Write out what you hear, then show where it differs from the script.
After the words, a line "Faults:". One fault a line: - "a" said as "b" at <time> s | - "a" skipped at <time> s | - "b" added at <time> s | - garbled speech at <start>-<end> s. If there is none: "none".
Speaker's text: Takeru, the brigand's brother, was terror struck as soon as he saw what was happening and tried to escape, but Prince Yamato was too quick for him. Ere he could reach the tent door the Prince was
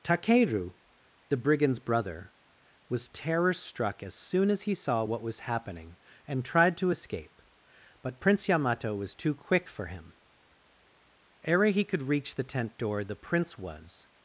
Takeru, the brigand's brother, was terror struck as soon as he saw what was happening and tried to escape, but Prince Yamato was too quick for him. Ere he could reach the tent door the Prince was
Faults:
none